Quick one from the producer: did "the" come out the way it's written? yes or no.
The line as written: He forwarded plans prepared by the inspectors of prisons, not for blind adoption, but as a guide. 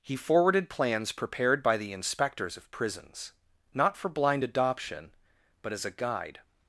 yes